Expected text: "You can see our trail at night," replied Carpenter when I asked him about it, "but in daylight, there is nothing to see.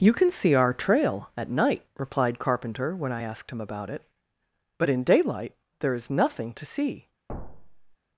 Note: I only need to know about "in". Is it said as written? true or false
true